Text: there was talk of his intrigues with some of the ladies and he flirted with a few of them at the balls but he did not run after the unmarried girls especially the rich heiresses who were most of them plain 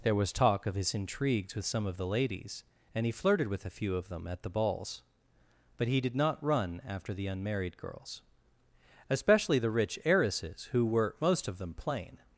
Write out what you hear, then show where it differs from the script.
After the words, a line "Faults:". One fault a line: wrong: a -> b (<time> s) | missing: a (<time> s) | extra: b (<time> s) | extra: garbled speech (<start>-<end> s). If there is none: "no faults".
there was talk of his intrigues with some of the ladies and he flirted with a few of them at the balls but he did not run after the unmarried girls especially the rich heiresses who were most of them plain
Faults:
no faults